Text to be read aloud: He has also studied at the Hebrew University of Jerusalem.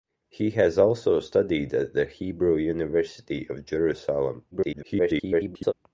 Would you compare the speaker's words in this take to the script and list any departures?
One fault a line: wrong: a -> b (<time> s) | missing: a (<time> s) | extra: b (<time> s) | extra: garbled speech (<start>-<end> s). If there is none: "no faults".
extra: garbled speech (4.5-5.7 s)